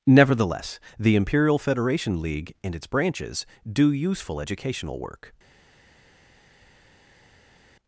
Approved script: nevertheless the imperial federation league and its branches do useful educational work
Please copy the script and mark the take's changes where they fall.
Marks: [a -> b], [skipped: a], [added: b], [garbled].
nevertheless the imperial federation league and its branches do useful educational work